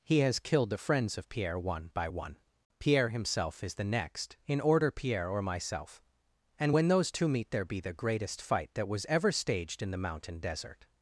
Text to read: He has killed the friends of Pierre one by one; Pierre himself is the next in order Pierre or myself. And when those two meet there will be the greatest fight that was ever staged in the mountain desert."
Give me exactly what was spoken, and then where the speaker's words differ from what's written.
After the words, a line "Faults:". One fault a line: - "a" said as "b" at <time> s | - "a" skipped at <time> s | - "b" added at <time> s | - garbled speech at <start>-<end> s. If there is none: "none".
He has killed the friends of Pierre one by one; Pierre himself is the next in order Pierre or myself. And when those two meet there be the greatest fight that was ever staged in the mountain desert."
Faults:
- "will" skipped at 7.7 s